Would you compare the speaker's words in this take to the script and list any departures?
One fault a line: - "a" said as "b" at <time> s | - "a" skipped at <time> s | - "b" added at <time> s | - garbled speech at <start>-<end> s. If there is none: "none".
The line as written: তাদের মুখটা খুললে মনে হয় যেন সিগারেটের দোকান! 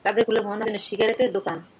- "মুখটা" skipped at 0.2 s
- "হয়" skipped at 0.7 s